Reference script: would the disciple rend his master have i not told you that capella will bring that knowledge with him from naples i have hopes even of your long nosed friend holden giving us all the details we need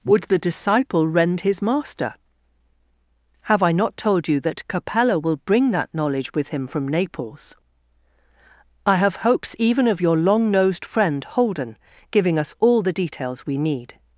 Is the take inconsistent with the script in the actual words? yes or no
no